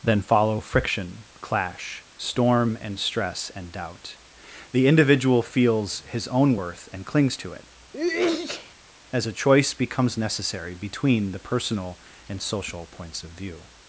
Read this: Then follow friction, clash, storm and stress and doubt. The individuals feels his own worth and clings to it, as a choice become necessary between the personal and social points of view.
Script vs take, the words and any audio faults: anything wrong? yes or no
yes